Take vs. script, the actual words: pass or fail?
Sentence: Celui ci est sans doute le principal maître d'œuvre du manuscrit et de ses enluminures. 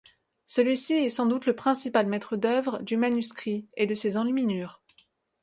pass